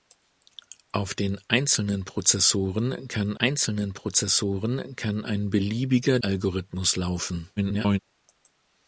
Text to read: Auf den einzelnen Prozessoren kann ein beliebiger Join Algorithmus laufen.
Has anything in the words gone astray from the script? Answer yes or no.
yes